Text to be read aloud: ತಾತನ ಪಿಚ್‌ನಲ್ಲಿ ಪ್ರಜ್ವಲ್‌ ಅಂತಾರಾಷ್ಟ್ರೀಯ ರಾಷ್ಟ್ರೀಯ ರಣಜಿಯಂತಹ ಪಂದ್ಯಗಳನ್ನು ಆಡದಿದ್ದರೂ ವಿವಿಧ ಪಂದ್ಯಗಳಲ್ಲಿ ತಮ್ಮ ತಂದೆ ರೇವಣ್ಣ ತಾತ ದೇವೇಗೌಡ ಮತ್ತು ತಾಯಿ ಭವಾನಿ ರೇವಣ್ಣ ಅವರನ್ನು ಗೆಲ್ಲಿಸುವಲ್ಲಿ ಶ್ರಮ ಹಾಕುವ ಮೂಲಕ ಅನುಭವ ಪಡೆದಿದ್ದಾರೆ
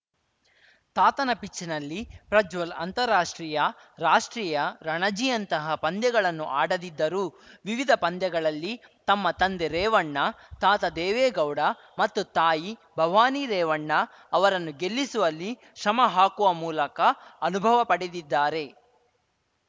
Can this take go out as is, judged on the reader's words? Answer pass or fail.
pass